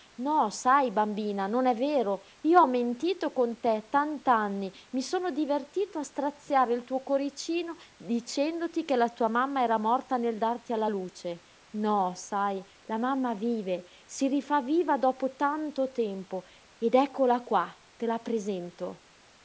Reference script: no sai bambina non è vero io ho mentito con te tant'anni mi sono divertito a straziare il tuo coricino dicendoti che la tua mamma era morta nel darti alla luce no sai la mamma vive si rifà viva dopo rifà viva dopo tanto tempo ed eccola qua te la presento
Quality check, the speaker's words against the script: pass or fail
fail